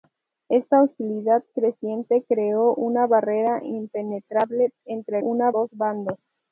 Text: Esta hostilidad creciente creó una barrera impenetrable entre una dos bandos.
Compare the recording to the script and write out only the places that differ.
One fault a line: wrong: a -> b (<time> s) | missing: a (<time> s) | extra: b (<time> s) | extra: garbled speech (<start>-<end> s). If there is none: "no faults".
no faults